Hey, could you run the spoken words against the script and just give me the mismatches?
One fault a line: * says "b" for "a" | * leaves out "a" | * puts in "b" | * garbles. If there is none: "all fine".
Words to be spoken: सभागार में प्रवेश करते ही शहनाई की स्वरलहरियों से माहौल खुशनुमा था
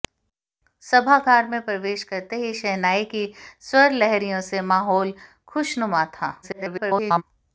* garbles